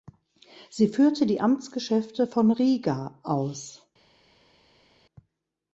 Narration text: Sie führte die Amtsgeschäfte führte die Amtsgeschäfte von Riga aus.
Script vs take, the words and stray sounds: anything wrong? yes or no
yes